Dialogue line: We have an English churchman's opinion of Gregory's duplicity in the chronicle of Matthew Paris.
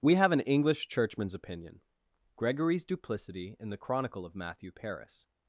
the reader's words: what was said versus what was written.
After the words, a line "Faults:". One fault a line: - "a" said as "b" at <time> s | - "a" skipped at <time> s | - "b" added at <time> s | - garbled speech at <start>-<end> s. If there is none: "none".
We have an English churchman's opinion Gregory's duplicity in the chronicle of Matthew Paris.
Faults:
- "of" skipped at 1.8 s